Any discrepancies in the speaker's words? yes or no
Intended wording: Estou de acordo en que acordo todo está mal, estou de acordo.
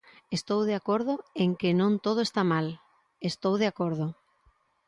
yes